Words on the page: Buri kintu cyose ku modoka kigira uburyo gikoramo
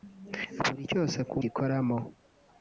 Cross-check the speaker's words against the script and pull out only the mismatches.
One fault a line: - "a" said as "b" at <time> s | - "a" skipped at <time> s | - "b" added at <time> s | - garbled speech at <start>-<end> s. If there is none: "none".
- "kintu" skipped at 0.8 s
- "modoka kigira uburyo" skipped at 1.4 s